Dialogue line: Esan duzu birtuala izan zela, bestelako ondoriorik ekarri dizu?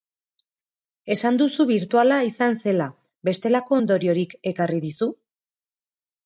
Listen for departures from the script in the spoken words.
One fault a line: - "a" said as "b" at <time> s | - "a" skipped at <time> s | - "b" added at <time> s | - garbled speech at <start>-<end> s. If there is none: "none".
none